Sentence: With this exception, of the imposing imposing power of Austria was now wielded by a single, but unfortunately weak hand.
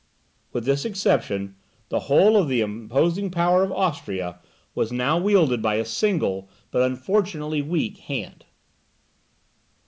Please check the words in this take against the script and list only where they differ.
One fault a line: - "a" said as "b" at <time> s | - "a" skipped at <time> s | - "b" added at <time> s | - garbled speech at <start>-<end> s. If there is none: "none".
- "the whole" added at 1.9 s
- "imposing" skipped at 3.3 s